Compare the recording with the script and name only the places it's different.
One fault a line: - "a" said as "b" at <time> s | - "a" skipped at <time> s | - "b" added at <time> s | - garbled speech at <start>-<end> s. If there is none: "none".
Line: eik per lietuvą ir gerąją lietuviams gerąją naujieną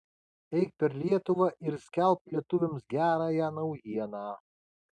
- "gerąją" said as "skelbk" at 1.9 s